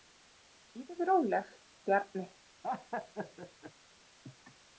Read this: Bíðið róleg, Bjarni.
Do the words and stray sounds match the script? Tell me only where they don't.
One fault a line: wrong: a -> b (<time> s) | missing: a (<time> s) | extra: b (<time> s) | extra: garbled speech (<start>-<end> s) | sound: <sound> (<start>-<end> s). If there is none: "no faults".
sound: laugh (2.6-3.7 s)